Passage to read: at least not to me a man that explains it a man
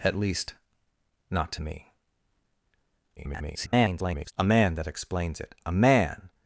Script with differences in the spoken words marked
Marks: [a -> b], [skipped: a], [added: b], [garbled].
at least not to me [garbled] a man that explains it a man